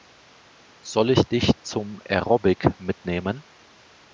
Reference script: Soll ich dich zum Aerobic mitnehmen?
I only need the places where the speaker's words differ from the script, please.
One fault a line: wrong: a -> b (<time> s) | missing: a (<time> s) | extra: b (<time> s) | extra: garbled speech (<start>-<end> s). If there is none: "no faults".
no faults